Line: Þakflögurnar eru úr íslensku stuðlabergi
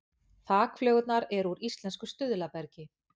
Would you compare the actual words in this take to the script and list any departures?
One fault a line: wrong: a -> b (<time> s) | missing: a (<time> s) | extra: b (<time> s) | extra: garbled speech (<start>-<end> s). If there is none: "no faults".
no faults